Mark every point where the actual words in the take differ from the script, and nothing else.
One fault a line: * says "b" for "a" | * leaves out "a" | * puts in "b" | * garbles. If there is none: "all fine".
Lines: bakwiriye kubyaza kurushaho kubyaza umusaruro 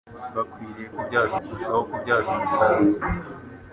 all fine